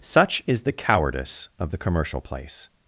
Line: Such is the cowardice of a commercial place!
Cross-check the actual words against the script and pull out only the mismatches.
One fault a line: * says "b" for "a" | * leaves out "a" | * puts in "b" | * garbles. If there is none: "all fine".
* says "the" for "a"